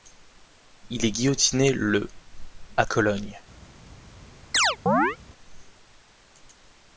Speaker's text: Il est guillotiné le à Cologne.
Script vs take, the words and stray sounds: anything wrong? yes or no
yes